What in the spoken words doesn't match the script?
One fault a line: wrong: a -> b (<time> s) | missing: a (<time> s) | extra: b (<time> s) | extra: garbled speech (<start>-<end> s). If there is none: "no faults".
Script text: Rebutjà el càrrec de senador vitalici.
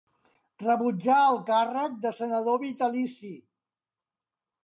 no faults